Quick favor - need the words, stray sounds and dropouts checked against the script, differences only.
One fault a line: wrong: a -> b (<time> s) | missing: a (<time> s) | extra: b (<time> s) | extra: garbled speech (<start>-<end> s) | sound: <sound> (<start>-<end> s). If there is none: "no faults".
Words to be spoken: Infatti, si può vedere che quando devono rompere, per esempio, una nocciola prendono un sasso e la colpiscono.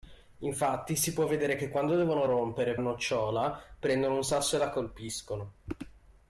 missing: per esempio una (2.8 s)